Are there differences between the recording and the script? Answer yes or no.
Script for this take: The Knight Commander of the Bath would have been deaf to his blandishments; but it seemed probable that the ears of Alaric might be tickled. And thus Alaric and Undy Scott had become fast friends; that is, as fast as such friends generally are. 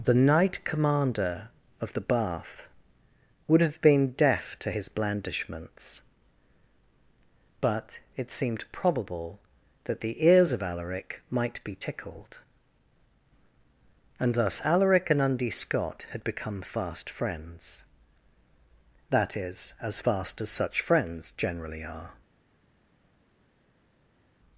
no